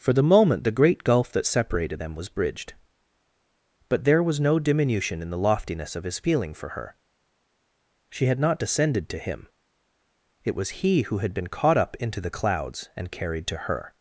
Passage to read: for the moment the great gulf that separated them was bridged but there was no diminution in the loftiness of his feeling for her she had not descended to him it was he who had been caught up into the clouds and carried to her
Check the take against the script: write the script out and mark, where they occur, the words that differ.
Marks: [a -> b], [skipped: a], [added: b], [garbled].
for the moment the great gulf that separated them was bridged but there was no diminution in the loftiness of his feeling for her she had not descended to him it was he who had been caught up into the clouds and carried to her